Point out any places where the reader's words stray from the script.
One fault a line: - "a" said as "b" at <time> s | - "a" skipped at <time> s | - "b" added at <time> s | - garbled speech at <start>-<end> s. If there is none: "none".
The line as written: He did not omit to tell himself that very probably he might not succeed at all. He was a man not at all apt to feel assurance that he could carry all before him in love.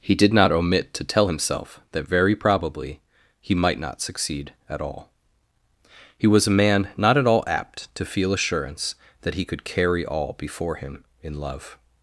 none